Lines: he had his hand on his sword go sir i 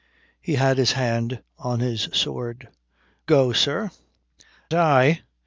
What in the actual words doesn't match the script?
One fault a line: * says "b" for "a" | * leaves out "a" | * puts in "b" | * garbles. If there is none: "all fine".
all fine